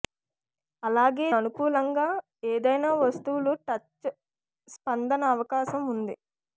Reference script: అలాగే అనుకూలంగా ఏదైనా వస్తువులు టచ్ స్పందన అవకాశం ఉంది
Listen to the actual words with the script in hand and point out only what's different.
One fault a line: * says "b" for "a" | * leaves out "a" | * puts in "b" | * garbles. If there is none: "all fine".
all fine